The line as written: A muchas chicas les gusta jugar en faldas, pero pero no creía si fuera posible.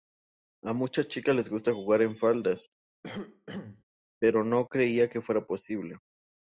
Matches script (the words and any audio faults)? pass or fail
fail